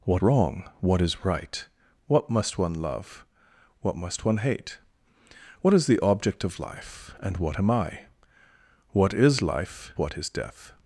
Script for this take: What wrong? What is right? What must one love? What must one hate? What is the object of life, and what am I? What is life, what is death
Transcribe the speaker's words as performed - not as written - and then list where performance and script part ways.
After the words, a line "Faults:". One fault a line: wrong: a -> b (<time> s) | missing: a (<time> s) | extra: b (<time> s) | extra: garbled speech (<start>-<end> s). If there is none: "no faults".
What wrong? What is right? What must one love? What must one hate? What is the object of life, and what am I? What is life, what is death
Faults:
no faults